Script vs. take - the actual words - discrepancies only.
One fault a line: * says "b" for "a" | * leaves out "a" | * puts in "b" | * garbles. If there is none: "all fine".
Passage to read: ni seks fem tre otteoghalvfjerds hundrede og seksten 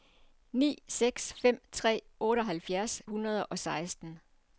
all fine